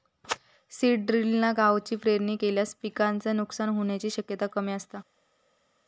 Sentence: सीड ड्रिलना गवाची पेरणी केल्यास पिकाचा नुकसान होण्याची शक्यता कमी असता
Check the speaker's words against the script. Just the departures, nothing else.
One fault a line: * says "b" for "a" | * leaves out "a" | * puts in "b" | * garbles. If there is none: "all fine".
all fine